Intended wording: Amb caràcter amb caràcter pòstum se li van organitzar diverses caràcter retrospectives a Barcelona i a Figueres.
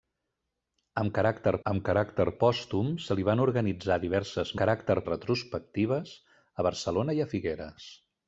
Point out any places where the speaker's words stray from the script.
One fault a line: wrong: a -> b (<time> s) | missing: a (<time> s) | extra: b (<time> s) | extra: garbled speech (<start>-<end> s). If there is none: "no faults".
no faults